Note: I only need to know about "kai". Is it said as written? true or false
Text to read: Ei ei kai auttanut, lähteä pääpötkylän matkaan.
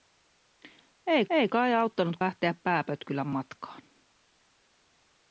true